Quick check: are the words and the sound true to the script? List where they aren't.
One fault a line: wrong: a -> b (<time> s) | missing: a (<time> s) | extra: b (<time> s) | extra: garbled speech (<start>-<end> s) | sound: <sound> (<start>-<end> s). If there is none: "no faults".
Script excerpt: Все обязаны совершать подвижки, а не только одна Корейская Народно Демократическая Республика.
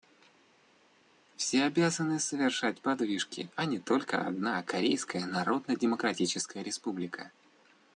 no faults